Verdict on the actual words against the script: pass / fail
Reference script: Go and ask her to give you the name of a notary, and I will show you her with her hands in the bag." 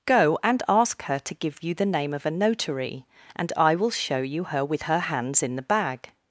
pass